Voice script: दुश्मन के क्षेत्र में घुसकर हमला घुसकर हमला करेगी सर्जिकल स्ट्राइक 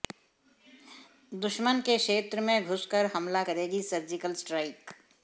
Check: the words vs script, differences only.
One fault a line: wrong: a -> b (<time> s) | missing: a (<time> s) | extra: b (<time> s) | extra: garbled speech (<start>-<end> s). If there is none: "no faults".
missing: घुसकर हमला (3.4 s)